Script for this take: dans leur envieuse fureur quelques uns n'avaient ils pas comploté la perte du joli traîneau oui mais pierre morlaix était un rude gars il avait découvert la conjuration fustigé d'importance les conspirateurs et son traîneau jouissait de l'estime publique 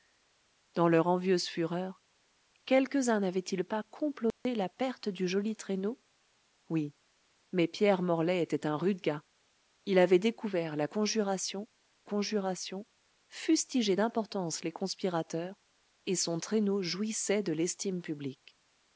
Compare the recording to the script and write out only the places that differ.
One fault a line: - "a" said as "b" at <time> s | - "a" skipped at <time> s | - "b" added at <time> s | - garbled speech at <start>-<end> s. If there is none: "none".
- "conjuration" added at 12.0 s